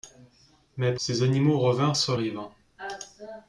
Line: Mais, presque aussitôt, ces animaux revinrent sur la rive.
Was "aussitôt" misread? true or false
true